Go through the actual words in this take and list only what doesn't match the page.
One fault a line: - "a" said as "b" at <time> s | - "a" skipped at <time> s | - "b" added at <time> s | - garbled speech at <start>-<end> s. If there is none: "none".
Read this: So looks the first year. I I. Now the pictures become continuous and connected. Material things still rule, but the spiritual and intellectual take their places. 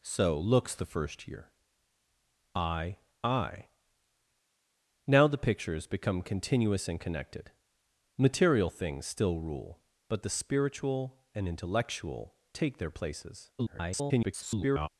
- garbled speech at 13.6-14.9 s